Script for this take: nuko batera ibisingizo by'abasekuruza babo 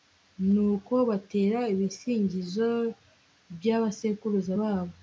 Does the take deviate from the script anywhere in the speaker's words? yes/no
no